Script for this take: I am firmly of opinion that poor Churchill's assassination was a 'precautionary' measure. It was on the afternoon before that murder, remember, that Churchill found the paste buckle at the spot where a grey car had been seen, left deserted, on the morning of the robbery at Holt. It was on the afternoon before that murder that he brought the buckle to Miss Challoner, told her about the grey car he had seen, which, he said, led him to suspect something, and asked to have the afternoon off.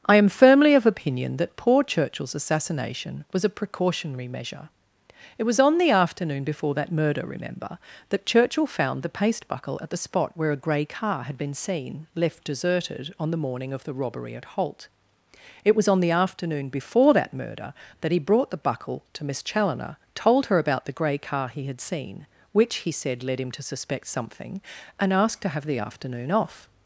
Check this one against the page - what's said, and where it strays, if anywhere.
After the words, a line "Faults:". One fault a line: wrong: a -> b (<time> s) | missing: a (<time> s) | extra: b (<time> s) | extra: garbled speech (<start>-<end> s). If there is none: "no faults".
I am firmly of opinion that poor Churchill's assassination was a 'precautionary' measure. It was on the afternoon before that murder, remember, that Churchill found the paste buckle at the spot where a grey car had been seen, left deserted, on the morning of the robbery at Holt. It was on the afternoon before that murder that he brought the buckle to Miss Challoner, told her about the grey car he had seen, which, he said, led him to suspect something, and asked to have the afternoon off.
Faults:
no faults